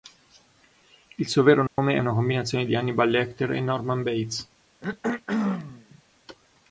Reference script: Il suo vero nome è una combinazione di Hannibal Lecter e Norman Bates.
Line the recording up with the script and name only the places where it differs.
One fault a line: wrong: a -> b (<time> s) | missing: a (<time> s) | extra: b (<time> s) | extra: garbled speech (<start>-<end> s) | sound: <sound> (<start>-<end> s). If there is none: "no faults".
sound: dropout (1.7-1.8 s)
sound: throat clearing (4.8-6.0 s)